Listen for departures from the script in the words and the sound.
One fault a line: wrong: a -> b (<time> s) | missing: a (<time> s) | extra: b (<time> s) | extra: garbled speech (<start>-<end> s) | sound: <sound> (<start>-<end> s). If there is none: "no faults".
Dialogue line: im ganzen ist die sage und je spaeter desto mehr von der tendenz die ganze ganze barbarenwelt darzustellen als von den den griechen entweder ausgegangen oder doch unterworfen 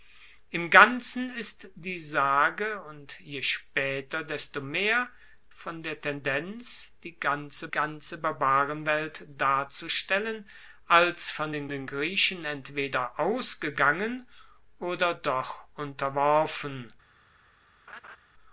sound: laugh (17.9-18.2 s)